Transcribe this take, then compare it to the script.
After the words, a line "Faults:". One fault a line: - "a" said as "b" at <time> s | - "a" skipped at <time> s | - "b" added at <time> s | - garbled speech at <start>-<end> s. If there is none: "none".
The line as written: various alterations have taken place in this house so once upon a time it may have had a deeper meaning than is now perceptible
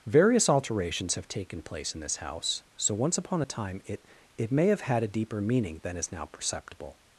various alterations have taken place in this house so once upon a time it it may have had a deeper meaning than is now perceptible
Faults:
- "it" added at 4.4 s